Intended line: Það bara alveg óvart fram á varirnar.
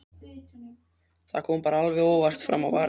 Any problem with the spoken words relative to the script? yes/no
yes